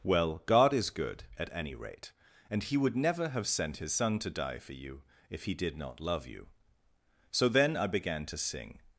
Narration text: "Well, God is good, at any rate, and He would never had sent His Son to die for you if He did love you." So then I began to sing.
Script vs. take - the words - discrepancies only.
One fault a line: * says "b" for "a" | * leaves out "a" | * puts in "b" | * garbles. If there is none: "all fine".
* says "have" for "had"
* puts in "not"